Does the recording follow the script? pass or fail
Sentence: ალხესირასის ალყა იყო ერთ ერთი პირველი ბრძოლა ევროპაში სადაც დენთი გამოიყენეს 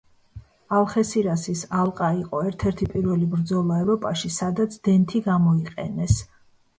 pass